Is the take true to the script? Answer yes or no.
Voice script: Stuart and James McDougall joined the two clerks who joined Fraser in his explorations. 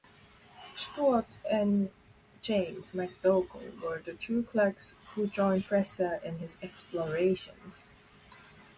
no